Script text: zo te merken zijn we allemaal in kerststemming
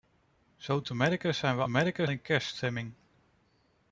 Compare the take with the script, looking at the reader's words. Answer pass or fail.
fail